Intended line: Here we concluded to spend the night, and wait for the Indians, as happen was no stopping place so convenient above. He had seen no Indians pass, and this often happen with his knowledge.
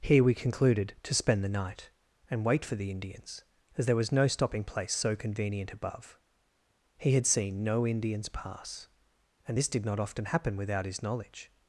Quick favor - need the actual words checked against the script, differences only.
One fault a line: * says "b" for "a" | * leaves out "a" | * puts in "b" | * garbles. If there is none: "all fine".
* says "there" for "happen"
* puts in "did not"
* says "without" for "with"